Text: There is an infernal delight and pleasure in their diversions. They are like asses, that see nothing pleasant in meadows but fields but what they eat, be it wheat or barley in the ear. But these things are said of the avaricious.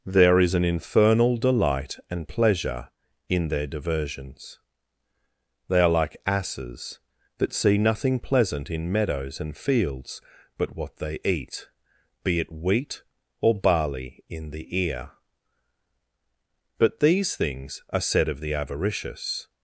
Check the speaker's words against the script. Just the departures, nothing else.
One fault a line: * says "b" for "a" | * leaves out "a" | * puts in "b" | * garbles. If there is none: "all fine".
* says "and" for "but"